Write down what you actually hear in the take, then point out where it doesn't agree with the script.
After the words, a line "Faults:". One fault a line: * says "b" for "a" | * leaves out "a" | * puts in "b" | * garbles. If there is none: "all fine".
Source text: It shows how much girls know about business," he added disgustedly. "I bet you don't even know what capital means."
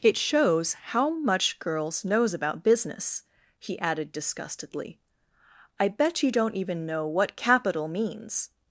It shows how much girls knows about business," he added disgustedly. "I bet you don't even know what capital means."
Faults:
* says "knows" for "know"